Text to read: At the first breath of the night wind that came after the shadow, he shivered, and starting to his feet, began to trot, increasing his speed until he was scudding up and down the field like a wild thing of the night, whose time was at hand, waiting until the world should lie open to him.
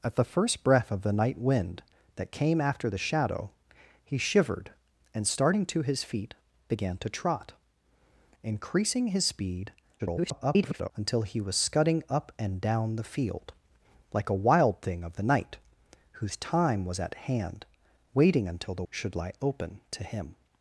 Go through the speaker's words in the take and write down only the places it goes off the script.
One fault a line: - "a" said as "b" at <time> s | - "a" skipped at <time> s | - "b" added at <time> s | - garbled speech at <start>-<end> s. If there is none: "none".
- garbled speech at 10.0-10.9 s
- "world" skipped at 18.8 s